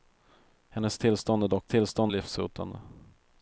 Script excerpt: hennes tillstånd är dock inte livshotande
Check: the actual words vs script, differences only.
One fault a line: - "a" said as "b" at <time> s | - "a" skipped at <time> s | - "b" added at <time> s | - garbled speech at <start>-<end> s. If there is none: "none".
- "inte" said as "tillstånd" at 1.7 s